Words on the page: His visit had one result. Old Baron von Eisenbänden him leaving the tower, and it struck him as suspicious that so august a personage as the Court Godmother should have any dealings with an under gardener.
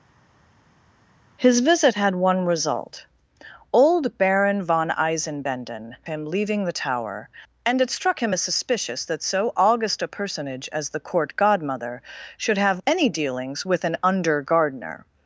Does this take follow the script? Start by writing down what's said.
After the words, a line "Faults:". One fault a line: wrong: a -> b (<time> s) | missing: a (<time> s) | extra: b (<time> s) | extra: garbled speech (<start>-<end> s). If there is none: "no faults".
His visit had one result. Old Baron von Eisenbänden him leaving the tower, and it struck him as suspicious that so august a personage as the Court Godmother should have any dealings with an under gardener.
Faults:
no faults